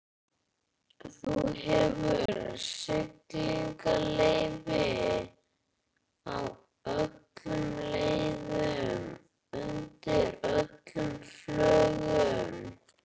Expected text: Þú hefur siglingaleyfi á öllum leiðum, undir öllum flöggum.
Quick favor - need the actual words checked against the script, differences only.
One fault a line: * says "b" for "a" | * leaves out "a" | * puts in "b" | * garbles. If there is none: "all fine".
all fine